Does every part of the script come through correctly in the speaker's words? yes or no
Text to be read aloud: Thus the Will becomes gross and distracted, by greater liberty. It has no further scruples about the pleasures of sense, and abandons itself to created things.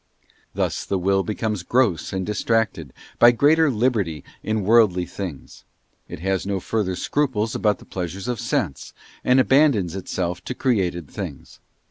no